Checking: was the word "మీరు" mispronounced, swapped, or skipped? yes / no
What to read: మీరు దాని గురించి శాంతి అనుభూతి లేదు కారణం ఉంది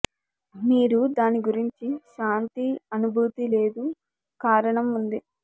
no